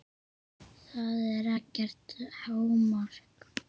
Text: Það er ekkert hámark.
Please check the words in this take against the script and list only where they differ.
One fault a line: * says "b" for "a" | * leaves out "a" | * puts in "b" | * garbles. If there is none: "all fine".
all fine